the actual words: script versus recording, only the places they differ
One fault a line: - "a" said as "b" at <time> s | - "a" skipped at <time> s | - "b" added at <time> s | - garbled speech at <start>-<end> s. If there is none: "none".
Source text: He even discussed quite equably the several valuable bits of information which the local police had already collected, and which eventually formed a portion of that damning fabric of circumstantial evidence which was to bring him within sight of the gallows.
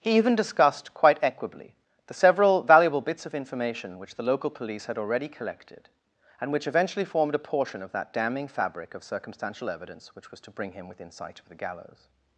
none